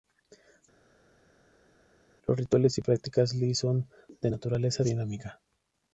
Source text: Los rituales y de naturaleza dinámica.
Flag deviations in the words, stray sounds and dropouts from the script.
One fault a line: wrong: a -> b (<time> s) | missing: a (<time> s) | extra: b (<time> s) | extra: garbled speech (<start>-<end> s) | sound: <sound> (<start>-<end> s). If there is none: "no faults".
extra: prácticas li son (2.8 s)